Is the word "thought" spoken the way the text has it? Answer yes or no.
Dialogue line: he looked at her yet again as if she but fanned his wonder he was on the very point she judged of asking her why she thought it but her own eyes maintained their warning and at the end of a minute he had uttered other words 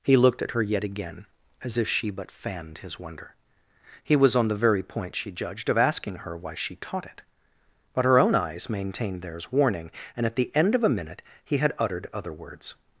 no